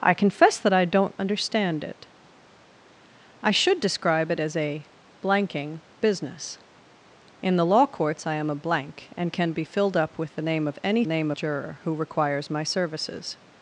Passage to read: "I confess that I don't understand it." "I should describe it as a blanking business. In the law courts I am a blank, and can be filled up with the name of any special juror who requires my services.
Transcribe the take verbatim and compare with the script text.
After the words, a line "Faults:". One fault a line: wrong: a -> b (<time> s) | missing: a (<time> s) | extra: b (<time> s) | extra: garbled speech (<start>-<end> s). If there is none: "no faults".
"I confess that I don't understand it." "I should describe it as a blanking business. In the law courts I am a blank, and can be filled up with the name of any name juror who requires my services.
Faults:
wrong: special -> name (11.0 s)